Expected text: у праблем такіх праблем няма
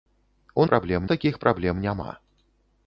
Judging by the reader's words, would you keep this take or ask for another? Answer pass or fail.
pass